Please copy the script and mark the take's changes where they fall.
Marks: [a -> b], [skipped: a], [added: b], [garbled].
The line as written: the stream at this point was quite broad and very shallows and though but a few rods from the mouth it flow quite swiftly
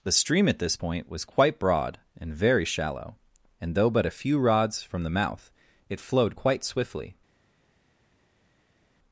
the stream at this point was quite broad and very [shallows -> shallow] and though but a few rods from the mouth it [flow -> flowed] quite swiftly